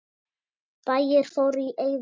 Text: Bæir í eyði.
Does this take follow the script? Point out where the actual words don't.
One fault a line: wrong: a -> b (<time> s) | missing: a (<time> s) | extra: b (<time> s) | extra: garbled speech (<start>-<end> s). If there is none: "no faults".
extra: fóru (1.4 s)